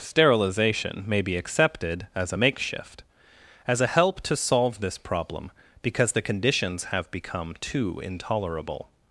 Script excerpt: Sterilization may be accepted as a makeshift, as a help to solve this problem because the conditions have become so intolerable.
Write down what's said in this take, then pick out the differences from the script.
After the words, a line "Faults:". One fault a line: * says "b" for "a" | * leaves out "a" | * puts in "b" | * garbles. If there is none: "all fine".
Sterilization may be accepted as a makeshift, as a help to solve this problem because the conditions have become too intolerable.
Faults:
* says "too" for "so"